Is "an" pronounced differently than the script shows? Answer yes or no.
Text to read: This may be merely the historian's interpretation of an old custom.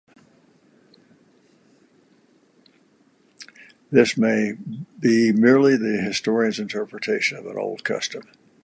no